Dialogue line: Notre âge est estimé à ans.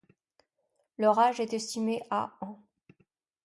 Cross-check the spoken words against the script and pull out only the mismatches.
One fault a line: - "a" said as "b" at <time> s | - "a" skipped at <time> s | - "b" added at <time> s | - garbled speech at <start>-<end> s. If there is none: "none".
- "Notre" said as "Leur" at 1.0 s